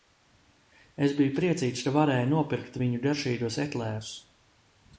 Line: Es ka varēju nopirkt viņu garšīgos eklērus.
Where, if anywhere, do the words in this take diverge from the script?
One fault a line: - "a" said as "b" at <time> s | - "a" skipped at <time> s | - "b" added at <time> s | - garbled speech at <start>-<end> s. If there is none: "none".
- "biju priecīgs" added at 1.2 s